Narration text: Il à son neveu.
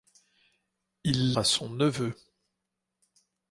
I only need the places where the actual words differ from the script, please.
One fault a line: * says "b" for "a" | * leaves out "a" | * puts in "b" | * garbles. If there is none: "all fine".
all fine